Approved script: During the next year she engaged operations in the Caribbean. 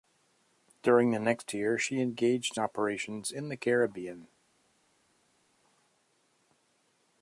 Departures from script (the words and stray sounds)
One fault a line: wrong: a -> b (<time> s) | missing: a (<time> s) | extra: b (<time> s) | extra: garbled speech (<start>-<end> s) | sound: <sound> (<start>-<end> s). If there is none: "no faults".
no faults